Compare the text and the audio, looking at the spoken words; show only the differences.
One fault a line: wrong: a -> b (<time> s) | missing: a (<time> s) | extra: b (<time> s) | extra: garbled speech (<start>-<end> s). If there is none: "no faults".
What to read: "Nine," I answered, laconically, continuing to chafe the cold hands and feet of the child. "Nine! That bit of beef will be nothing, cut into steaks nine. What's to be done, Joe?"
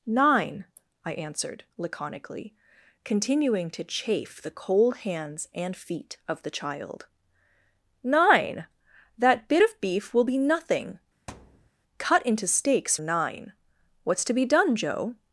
no faults